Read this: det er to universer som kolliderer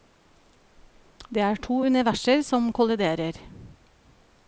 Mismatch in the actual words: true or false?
false